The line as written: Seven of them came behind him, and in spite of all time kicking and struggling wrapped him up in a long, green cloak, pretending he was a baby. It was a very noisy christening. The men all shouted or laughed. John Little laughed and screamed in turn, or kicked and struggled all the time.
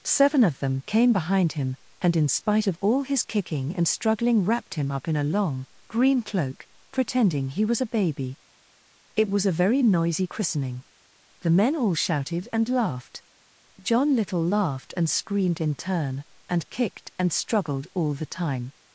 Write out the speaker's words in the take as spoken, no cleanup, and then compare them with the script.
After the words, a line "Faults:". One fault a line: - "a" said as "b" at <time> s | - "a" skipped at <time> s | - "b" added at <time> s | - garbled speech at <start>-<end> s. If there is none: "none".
Seven of them came behind him, and in spite of all his kicking and struggling wrapped him up in a long, green cloak, pretending he was a baby. It was a very noisy christening. The men all shouted and laughed. John Little laughed and screamed in turn, and kicked and struggled all the time.
Faults:
- "time" said as "his" at 3.0 s
- "or" said as "and" at 12.5 s
- "or" said as "and" at 16.5 s